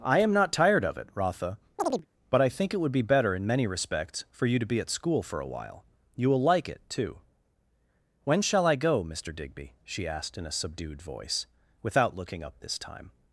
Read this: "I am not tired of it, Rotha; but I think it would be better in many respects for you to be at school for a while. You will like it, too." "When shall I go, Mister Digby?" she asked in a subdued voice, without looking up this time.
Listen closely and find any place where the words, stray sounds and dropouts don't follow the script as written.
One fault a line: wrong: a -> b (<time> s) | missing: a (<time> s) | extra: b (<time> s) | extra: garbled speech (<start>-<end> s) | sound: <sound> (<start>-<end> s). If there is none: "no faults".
sound: chirp (1.8-2.1 s)